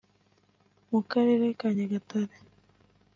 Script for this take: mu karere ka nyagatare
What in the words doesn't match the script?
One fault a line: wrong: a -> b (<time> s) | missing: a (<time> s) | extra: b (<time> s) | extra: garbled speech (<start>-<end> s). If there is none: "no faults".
no faults